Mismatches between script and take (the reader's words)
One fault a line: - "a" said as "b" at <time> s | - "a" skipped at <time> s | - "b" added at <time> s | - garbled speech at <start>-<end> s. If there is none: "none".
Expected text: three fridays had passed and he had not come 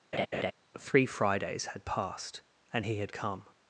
- "not" skipped at 3.1 s